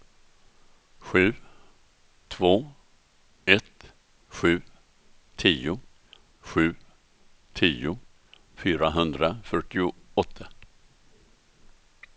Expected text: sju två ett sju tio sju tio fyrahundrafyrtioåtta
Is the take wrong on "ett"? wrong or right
right